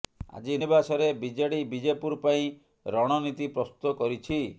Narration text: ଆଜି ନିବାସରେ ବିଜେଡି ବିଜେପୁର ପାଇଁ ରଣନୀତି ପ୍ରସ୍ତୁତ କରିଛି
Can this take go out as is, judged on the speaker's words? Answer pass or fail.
pass